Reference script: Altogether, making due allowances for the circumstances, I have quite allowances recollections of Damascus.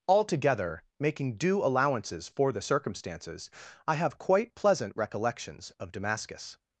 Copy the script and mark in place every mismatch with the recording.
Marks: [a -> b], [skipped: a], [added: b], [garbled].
Altogether, making due allowances for the circumstances, I have quite [allowances -> pleasant] recollections of Damascus.